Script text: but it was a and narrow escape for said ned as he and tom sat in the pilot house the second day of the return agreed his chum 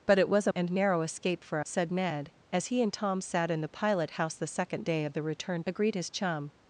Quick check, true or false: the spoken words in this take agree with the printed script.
true